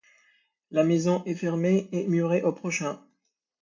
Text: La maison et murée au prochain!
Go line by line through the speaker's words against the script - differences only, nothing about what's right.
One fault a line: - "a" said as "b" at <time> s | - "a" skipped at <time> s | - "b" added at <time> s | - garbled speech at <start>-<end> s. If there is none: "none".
- "est fermée" added at 1.2 s